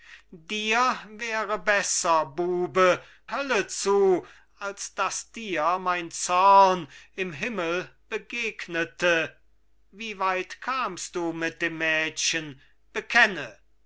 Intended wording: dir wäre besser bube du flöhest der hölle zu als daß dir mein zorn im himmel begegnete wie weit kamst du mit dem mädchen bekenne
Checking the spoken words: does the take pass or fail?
fail